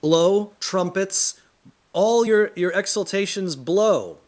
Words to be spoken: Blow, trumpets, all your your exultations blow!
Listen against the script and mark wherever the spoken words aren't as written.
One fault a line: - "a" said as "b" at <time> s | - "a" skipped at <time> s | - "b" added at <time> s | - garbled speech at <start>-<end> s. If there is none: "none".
none